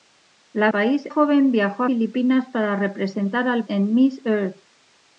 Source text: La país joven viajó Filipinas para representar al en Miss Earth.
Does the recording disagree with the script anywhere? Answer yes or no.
no